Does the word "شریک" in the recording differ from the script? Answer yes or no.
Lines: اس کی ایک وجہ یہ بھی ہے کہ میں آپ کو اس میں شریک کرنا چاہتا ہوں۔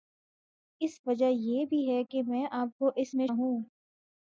yes